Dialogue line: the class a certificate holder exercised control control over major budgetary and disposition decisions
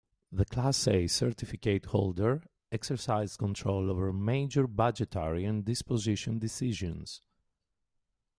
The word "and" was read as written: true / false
true